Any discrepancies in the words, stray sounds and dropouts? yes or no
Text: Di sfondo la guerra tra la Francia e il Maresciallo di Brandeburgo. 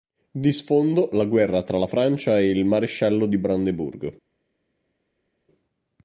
no